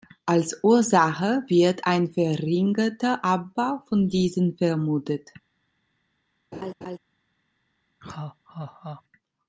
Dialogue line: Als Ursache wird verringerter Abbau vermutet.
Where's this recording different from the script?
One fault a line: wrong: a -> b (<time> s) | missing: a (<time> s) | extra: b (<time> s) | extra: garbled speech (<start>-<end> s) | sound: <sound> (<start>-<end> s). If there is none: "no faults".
extra: ein (1.8 s)
extra: von diesen (3.9 s)
sound: laugh (6.5-7.0 s)
sound: laugh (8.0-9.0 s)